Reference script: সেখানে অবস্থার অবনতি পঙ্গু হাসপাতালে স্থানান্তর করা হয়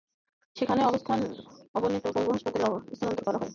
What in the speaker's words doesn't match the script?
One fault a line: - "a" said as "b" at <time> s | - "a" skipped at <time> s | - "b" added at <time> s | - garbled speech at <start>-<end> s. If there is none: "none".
none